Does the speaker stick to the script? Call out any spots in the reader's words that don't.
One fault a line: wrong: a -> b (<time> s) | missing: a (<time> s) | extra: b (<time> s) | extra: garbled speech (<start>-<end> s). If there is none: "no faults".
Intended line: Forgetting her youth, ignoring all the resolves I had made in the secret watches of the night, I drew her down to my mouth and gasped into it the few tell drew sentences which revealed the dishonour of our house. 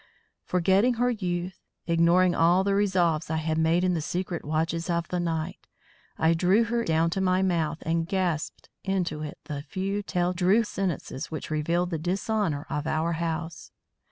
no faults